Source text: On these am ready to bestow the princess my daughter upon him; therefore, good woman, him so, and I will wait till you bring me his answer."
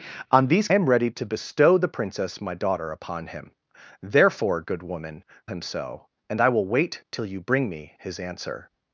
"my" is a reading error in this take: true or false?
false